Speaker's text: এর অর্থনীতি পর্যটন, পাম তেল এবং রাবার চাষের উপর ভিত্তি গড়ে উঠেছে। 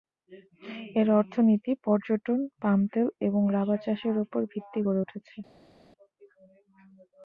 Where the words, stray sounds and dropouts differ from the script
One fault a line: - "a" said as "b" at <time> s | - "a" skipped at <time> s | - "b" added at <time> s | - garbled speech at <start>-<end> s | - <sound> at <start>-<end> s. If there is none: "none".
none